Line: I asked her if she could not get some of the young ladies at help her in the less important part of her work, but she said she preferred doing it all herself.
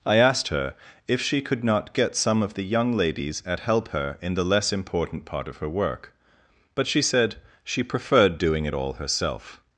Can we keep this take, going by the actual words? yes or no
yes